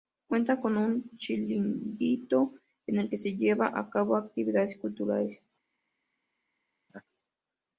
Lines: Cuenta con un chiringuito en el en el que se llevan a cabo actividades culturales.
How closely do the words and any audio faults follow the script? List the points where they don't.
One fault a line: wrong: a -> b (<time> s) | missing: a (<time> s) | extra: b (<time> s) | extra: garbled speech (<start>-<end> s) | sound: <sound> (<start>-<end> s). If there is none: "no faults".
missing: en el (3.1 s)
sound: laugh (6.9-7.0 s)